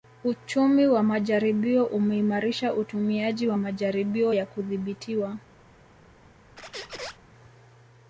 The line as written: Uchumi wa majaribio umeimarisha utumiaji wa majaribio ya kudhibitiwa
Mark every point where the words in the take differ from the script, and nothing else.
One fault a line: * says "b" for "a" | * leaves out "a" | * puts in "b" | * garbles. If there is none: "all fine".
all fine